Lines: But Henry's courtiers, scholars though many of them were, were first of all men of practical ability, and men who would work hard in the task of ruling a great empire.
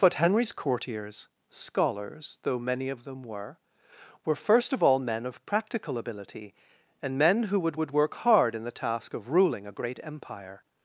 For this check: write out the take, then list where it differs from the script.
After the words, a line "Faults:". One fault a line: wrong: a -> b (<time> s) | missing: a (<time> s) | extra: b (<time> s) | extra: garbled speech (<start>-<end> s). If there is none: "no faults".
But Henry's courtiers, scholars though many of them were, were first of all men of practical ability, and men who would would work hard in the task of ruling a great empire.
Faults:
extra: would (7.7 s)